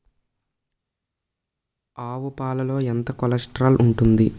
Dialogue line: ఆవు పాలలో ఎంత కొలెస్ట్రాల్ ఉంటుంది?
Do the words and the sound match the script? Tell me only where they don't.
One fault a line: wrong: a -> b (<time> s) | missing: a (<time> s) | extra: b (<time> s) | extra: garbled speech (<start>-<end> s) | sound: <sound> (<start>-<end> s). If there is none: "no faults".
no faults